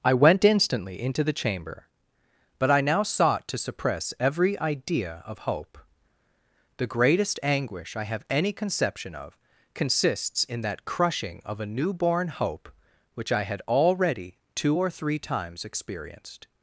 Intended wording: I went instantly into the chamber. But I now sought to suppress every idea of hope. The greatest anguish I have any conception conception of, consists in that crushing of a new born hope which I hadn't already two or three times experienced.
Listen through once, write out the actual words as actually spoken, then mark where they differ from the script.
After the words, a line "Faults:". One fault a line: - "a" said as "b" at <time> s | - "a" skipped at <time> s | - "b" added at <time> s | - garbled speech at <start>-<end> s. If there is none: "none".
I went instantly into the chamber. But I now sought to suppress every idea of hope. The greatest anguish I have any conception of, consists in that crushing of a new born hope which I had already two or three times experienced.
Faults:
- "conception" skipped at 9.1 s
- "hadn't" said as "had" at 13.4 s